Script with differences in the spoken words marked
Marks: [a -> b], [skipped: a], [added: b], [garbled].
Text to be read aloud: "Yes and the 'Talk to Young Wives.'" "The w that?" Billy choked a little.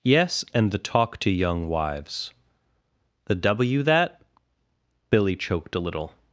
"Yes and the 'Talk to Young Wives.'" "The w that?" Billy choked a little.